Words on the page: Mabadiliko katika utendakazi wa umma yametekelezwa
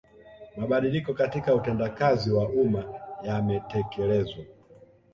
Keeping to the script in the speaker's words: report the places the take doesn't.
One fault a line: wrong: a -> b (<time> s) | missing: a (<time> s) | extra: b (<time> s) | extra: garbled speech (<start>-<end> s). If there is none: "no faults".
no faults